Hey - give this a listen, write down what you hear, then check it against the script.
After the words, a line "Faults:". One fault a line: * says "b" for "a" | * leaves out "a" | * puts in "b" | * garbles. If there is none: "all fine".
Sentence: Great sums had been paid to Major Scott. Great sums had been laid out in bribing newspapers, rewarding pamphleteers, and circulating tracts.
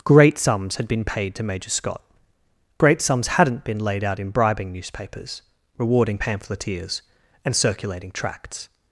Great sums had been paid to Major Scott. Great sums hadn't been laid out in bribing newspapers, rewarding pamphleteers, and circulating tracts.
Faults:
* says "hadn't" for "had"